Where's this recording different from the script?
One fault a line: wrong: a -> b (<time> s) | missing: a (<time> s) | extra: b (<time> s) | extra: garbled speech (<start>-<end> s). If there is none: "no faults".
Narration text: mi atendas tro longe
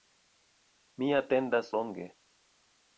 missing: tro (1.7 s)